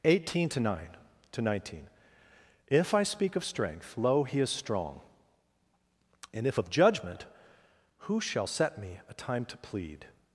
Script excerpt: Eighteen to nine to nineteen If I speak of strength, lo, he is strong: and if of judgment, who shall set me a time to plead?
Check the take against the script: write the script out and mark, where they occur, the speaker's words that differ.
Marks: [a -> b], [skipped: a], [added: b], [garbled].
Eighteen to nine to nineteen If I speak of strength, lo, he is strong: and if of judgment, who shall set me a time to plead?